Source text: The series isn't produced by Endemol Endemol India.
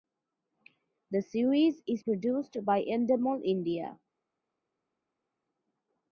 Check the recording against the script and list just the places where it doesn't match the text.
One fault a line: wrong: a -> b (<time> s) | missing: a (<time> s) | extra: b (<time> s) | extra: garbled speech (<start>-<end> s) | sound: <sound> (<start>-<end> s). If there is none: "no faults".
wrong: isn't -> is (1.9 s)
missing: Endemol (3.4 s)